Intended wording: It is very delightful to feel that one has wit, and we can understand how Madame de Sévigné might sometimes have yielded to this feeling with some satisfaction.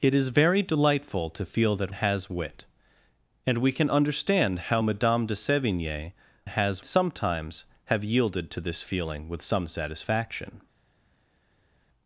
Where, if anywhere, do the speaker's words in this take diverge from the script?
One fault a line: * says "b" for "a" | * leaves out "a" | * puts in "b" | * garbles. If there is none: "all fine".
* leaves out "one"
* says "has" for "might"